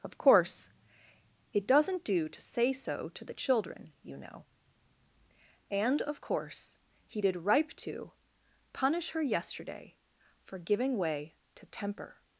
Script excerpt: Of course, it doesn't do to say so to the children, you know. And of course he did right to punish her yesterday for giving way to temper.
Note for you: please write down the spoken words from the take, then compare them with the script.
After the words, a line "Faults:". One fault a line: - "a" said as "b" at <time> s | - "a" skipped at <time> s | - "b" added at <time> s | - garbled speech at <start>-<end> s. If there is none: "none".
Of course, it doesn't do to say so to the children, you know. And of course he did ripe to punish her yesterday for giving way to temper.
Faults:
- "right" said as "ripe" at 7.4 s